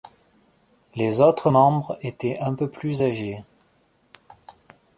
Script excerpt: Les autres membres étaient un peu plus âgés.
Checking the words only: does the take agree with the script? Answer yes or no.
yes